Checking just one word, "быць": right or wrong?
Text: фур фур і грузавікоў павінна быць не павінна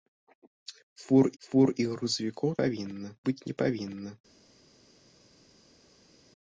right